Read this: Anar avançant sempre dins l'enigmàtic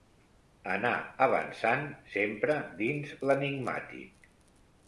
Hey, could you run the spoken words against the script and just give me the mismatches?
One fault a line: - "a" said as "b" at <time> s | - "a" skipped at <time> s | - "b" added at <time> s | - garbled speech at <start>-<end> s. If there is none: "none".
none